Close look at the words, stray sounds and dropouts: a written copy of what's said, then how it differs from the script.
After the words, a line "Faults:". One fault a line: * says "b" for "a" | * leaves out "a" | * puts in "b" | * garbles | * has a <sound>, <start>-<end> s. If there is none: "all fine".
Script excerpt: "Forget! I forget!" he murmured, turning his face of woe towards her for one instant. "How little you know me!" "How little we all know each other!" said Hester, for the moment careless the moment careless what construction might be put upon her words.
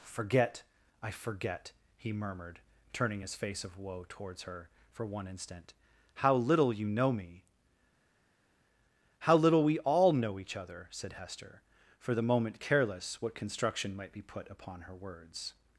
"Forget! I forget!" he murmured, turning his face of woe towards her for one instant. "How little you know me!" "How little we all know each other!" said Hester, for the moment careless what construction might be put upon her words.
Faults:
* leaves out "the moment careless"